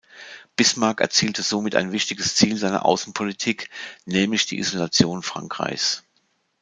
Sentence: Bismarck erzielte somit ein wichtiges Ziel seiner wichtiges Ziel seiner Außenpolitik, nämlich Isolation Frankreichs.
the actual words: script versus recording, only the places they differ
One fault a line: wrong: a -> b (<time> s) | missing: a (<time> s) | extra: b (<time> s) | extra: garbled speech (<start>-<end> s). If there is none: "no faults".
missing: wichtiges Ziel seiner (2.9 s)
extra: die (4.5 s)